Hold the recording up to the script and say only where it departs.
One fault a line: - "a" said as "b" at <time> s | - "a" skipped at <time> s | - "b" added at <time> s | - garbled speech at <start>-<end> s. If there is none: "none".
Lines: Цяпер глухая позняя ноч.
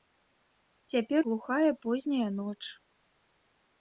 none